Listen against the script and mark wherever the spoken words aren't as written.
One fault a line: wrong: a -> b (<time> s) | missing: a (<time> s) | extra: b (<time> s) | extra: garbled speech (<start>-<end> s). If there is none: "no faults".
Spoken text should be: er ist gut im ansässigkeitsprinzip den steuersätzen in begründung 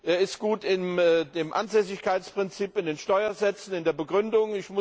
extra: in (2.8 s)
extra: der (3.8 s)